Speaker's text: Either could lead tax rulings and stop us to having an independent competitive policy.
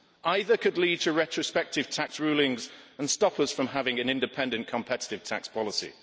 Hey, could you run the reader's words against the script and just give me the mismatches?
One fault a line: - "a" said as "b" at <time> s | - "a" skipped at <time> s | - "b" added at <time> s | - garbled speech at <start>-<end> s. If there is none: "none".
- "to retrospective" added at 1.0 s
- "to" said as "from" at 3.5 s
- "tax" added at 5.2 s